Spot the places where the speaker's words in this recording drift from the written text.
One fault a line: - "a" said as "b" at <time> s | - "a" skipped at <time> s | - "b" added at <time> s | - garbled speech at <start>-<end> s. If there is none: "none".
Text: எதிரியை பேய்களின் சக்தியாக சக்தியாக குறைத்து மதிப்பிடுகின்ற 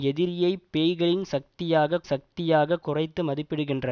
none